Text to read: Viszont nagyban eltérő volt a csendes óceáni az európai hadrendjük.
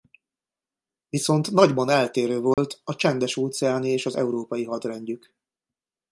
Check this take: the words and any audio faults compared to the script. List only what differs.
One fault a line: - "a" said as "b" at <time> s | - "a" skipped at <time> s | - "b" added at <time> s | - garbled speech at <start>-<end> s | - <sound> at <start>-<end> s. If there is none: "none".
- dropout at 2.5-2.6 s
- "és" added at 3.9 s